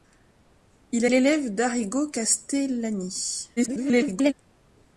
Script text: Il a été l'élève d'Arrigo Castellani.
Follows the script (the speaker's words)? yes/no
no